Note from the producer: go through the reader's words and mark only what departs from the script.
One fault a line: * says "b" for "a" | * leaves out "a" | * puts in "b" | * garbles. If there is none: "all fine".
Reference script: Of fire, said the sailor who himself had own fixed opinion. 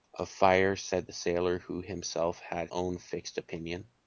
all fine